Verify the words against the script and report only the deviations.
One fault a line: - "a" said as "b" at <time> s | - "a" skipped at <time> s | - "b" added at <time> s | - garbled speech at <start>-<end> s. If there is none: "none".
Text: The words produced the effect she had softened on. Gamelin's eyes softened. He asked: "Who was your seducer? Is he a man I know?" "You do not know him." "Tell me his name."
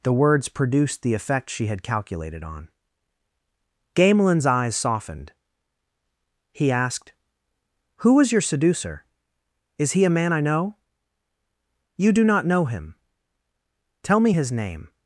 - "softened" said as "calculated" at 1.8 s